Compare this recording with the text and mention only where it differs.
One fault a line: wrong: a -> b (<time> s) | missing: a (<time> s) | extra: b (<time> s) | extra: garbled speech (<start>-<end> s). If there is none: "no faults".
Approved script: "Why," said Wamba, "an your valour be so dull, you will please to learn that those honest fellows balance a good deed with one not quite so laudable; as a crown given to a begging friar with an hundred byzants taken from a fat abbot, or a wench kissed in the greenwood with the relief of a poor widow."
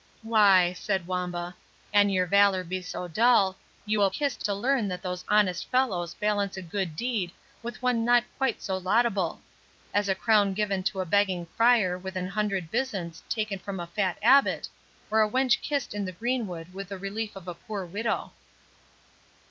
wrong: please -> kissed (4.1 s)